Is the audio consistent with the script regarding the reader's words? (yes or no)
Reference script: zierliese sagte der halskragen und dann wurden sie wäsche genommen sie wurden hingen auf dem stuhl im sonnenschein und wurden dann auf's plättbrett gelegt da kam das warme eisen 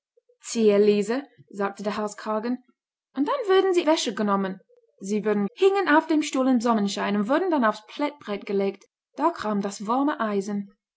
yes